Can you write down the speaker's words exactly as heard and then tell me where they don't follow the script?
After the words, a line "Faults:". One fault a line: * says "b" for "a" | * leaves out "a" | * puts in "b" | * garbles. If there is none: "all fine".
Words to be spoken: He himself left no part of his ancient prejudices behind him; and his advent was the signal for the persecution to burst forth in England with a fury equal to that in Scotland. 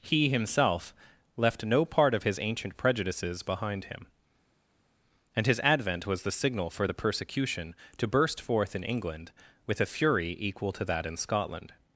He himself left no part of his ancient prejudices behind him; and his advent was the signal for the persecution to burst forth in England with a fury equal to that in Scotland.
Faults:
all fine